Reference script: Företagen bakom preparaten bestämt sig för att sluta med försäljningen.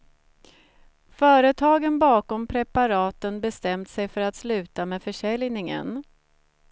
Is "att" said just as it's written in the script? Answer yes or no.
yes